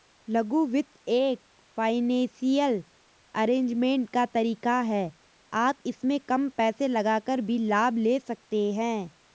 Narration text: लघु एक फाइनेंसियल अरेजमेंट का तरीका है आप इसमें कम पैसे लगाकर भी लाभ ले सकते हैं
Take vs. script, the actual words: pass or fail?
fail